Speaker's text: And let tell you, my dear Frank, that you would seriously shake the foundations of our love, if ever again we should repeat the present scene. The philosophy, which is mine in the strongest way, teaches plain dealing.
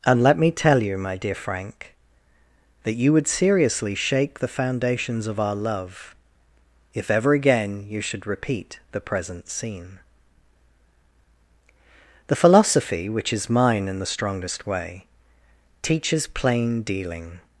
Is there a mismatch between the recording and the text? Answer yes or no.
yes